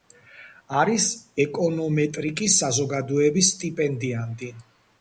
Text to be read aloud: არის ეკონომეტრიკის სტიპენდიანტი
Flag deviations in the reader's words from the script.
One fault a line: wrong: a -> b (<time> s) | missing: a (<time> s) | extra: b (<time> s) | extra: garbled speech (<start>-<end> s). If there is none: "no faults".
extra: საზოგადოების (2.6 s)